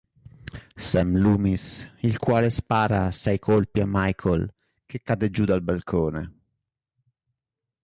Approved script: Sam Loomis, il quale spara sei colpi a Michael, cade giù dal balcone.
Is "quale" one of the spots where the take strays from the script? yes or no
no